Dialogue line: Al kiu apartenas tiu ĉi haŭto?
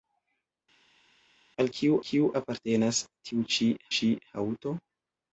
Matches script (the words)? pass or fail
fail